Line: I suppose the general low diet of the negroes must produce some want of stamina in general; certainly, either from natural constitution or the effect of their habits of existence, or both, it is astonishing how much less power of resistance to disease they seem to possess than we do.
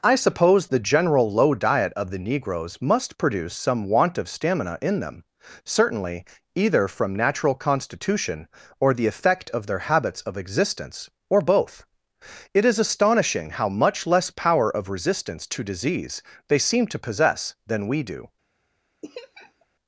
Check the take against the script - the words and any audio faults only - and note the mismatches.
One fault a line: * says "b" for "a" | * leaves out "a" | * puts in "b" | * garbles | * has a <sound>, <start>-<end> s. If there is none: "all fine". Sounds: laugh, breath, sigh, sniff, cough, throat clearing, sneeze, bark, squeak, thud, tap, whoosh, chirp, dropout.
* says "them" for "general"
* has a laugh, 19.0-19.7 s